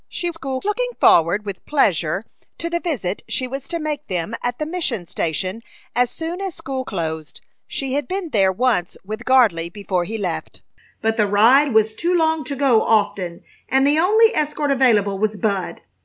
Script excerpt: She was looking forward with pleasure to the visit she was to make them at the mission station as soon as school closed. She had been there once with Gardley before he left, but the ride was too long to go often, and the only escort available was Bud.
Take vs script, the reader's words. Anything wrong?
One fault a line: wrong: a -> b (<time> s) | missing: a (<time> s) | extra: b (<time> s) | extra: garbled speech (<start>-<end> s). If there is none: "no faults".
wrong: was -> school (0.3 s)